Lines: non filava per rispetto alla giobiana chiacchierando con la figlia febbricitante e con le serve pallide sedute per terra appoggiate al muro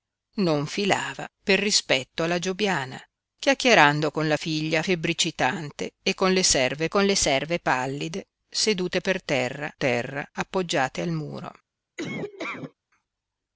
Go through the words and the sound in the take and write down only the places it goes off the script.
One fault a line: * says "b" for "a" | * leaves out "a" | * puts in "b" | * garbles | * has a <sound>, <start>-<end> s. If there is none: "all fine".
* puts in "con le serve"
* puts in "terra"
* has a laugh, 12.0-12.7 s